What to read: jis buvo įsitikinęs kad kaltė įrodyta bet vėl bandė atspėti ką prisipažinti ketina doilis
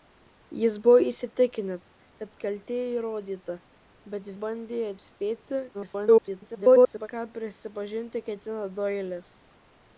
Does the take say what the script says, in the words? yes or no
no